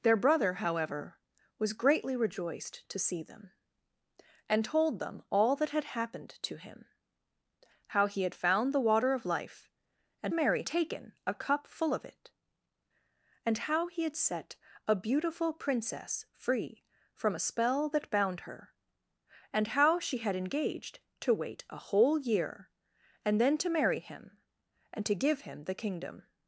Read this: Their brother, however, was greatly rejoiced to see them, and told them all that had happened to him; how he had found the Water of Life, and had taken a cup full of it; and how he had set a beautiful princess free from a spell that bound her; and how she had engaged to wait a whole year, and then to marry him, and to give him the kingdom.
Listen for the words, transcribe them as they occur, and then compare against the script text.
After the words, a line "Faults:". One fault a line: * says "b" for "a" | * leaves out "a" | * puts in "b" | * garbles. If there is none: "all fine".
Their brother, however, was greatly rejoiced to see them, and told them all that had happened to him; how he had found the Water of Life, and marry taken a cup full of it; and how he had set a beautiful princess free from a spell that bound her; and how she had engaged to wait a whole year, and then to marry him, and to give him the kingdom.
Faults:
* says "marry" for "had"